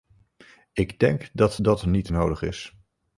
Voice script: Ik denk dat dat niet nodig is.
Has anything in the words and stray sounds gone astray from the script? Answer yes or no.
no